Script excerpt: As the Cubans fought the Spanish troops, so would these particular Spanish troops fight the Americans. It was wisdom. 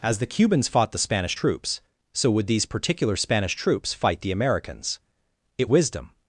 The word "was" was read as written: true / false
false